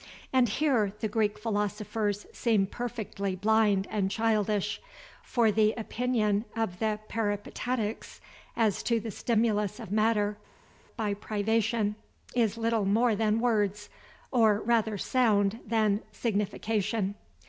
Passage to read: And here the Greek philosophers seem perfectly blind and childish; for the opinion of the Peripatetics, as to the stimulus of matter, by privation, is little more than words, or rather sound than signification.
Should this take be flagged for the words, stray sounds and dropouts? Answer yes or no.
no